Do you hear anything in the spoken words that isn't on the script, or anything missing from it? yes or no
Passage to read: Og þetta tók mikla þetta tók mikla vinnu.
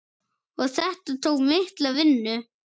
yes